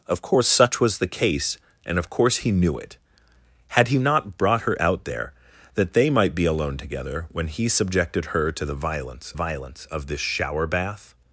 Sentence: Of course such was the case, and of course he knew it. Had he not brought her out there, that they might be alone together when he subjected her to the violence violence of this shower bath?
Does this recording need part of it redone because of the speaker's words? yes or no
no